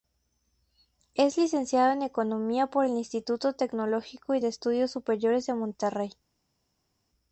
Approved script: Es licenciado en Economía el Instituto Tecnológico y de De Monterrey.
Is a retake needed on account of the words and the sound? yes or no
yes